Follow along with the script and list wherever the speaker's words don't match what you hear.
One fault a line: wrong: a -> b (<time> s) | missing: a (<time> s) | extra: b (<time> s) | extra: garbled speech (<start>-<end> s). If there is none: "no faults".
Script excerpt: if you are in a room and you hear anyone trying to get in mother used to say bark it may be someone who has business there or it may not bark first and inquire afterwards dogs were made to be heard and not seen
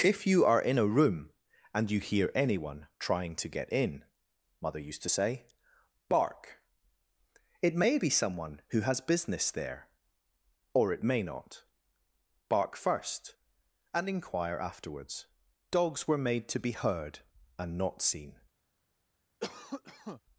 no faults